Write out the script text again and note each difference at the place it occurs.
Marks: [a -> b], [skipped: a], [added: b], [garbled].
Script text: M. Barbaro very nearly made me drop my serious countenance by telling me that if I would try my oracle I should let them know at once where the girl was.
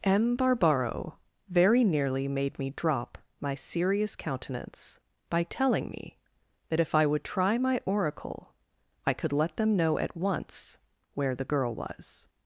M. Barbaro very nearly made me drop my serious countenance by telling me that if I would try my oracle I [should -> could] let them know at once where the girl was.